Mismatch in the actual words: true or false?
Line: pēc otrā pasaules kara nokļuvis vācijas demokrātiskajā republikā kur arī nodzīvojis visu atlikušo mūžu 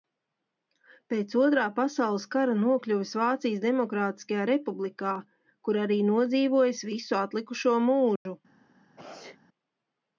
false